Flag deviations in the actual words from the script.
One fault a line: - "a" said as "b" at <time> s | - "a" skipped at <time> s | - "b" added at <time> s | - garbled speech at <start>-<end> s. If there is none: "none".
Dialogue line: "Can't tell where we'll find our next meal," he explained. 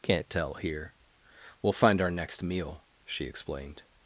- "where" said as "here" at 0.6 s
- "he" said as "she" at 3.0 s